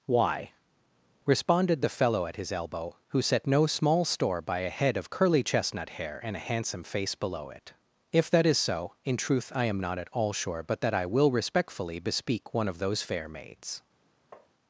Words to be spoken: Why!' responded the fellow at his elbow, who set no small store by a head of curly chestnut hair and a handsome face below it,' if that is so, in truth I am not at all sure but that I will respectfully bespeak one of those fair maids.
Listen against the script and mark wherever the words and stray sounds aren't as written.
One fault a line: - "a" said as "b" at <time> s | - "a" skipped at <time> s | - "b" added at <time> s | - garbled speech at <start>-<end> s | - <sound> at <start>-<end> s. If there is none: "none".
- tap at 14.3-14.5 s